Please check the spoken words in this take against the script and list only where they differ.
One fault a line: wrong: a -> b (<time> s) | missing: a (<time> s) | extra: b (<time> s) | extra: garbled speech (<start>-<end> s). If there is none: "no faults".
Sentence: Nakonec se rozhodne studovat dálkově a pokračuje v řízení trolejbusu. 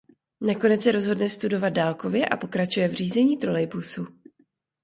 no faults